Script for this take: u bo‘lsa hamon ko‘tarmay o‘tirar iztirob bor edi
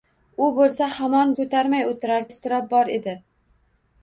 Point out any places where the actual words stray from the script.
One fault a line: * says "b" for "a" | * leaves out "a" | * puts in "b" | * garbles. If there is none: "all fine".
all fine